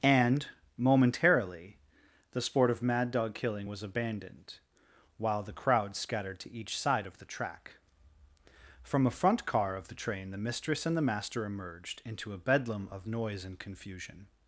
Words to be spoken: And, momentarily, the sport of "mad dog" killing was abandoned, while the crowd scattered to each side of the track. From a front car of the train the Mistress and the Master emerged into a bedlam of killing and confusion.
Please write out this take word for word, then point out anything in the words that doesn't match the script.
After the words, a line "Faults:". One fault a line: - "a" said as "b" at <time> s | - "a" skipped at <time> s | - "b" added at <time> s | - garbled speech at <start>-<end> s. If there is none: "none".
And, momentarily, the sport of "mad dog" killing was abandoned, while the crowd scattered to each side of the track. From a front car of the train the Mistress and the Master emerged into a bedlam of noise and confusion.
Faults:
- "killing" said as "noise" at 13.1 s